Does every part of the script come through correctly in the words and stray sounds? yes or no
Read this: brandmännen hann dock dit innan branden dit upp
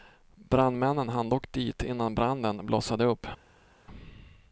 no